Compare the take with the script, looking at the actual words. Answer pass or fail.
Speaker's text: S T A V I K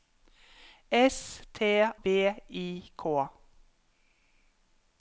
fail